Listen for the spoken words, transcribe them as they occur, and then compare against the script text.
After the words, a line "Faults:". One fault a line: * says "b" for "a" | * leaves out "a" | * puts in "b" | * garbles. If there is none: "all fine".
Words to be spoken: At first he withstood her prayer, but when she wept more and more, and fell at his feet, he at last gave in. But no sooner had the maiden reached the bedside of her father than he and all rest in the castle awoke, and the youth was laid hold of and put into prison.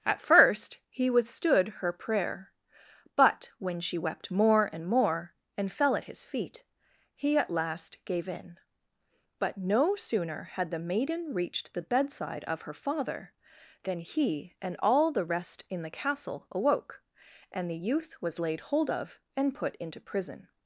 At first he withstood her prayer, but when she wept more and more, and fell at his feet, he at last gave in. But no sooner had the maiden reached the bedside of her father than he and all the rest in the castle awoke, and the youth was laid hold of and put into prison.
Faults:
* puts in "the"